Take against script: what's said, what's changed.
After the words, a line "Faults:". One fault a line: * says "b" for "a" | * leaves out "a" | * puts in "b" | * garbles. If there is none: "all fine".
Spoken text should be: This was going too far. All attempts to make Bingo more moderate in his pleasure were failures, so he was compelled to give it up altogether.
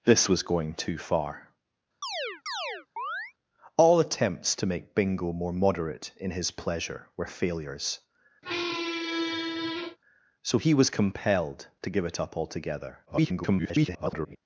This was going too far. All attempts to make Bingo more moderate in his pleasure were failures, so he was compelled to give it up altogether. [garbled]
Faults:
* garbles